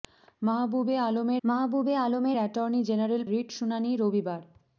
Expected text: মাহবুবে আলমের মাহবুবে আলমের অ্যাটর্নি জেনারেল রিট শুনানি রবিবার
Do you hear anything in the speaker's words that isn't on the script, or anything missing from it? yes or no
no